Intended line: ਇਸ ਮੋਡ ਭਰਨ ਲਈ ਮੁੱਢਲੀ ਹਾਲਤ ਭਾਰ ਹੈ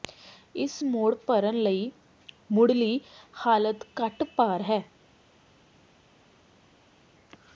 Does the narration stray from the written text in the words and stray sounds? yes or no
yes